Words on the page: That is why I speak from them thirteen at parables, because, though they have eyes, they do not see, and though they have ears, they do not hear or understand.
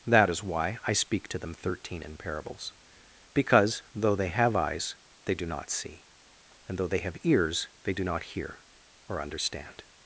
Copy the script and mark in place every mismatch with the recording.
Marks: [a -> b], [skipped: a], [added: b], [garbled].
That is why I speak [from -> to] them thirteen [at -> in] parables, because, though they have eyes, they do not see, and though they have ears, they do not hear or understand.